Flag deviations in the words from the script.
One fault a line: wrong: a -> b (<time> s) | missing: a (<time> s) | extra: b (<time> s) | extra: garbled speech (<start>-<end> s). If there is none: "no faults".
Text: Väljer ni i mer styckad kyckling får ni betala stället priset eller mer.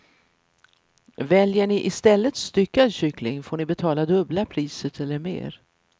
wrong: mer -> stället (1.9 s)
wrong: stället -> dubbla (4.0 s)